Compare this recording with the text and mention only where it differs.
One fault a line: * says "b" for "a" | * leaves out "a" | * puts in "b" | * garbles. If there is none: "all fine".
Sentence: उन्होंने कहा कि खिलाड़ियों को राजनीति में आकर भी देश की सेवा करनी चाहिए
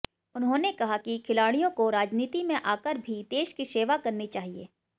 all fine